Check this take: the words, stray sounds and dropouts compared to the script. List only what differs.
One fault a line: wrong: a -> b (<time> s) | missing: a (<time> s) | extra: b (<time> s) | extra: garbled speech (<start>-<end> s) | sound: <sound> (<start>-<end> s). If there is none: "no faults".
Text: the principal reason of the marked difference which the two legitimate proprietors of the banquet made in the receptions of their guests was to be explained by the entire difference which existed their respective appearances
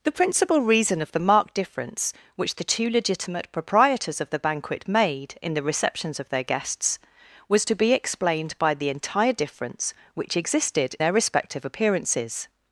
no faults